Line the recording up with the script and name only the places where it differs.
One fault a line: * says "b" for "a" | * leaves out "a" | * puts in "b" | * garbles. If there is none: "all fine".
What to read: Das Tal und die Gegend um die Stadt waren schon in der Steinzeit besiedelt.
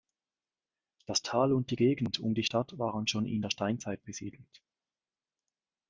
all fine